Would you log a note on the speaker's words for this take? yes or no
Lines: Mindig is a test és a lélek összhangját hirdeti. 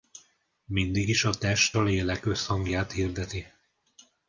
yes